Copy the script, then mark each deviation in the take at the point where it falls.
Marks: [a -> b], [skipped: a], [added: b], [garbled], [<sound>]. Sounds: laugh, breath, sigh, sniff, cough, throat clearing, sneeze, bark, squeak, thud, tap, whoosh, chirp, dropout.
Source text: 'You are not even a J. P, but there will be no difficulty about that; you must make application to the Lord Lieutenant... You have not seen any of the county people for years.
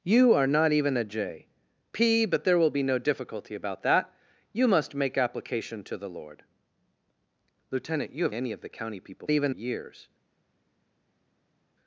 'You are not even a J. P, but there will be no difficulty about that; you must make application to the Lord Lieutenant... You have [skipped: not seen] any of the county people [for -> even] years.